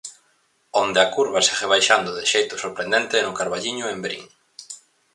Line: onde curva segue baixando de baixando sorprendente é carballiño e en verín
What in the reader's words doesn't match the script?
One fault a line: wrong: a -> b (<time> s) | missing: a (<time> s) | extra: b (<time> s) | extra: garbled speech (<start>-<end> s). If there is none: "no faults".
extra: a (1.0 s)
wrong: baixando -> xeito (2.3 s)
extra: no (3.2 s)